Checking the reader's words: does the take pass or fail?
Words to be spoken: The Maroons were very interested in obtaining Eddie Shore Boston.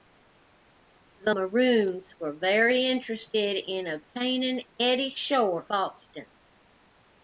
pass